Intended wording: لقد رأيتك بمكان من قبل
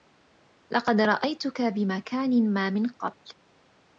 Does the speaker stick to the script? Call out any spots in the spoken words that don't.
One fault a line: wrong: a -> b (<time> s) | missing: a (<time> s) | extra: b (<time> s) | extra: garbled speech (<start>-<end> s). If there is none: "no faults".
extra: ما (2.5 s)